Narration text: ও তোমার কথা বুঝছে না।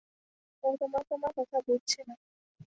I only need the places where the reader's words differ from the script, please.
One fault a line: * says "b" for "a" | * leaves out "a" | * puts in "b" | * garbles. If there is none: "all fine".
* puts in "তোমার"